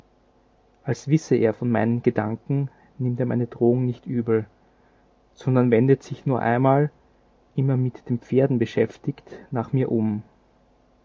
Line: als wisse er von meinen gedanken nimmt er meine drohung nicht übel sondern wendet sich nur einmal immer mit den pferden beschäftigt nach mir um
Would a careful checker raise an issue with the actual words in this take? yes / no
no